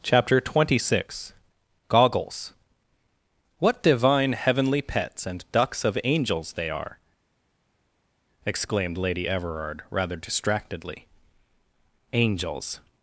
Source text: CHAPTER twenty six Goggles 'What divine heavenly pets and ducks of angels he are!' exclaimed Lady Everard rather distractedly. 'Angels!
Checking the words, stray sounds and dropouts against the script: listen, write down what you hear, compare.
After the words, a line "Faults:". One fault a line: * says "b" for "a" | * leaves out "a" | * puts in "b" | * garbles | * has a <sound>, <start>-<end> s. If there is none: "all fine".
CHAPTER twenty six Goggles 'What divine heavenly pets and ducks of angels they are!' exclaimed Lady Everard rather distractedly. 'Angels!
Faults:
* says "they" for "he"